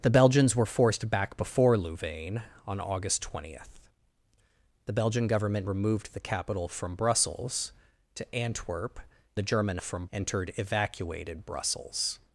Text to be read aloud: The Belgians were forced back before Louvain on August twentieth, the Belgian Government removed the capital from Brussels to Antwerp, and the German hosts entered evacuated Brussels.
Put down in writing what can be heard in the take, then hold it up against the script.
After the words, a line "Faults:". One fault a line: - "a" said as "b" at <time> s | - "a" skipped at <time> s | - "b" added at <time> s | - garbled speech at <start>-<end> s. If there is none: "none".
The Belgians were forced back before Louvain on August twentieth, the Belgian Government removed the capital from Brussels to Antwerp, the German from entered evacuated Brussels.
Faults:
- "and" skipped at 9.0 s
- "hosts" said as "from" at 9.8 s